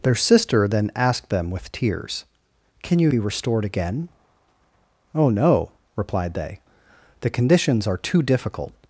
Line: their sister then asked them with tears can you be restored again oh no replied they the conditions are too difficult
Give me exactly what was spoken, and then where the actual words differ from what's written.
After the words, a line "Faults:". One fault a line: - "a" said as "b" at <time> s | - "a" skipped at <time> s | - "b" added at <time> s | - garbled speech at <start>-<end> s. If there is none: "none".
their sister then asked them with tears can you be restored again oh no replied they the conditions are too difficult
Faults:
none